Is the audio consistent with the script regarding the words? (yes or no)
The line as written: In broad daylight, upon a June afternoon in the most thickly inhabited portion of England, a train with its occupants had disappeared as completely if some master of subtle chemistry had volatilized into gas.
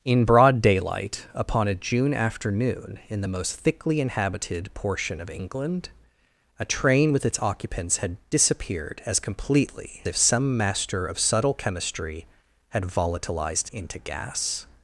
yes